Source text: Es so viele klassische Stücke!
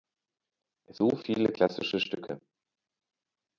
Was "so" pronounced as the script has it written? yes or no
yes